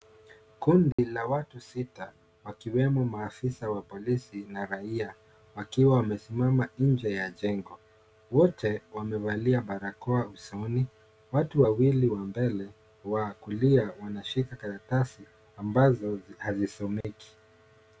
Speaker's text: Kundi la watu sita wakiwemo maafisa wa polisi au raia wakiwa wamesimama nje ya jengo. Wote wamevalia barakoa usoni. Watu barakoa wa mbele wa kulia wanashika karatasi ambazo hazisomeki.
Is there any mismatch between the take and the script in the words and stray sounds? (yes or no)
yes